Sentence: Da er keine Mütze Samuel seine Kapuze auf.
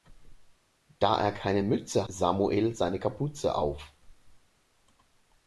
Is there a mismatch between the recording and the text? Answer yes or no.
no